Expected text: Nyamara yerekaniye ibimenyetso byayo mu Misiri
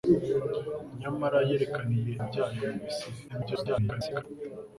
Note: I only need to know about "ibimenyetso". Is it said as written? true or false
false